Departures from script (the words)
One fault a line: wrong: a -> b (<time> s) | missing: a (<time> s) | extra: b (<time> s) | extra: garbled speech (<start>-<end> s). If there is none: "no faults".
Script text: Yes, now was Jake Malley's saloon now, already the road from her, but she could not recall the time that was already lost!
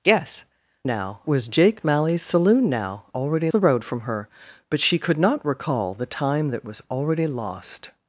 no faults